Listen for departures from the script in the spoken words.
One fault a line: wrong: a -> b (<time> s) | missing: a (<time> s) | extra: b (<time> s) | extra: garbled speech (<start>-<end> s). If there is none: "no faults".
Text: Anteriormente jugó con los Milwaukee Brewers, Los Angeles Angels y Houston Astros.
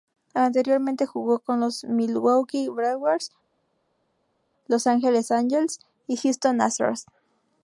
no faults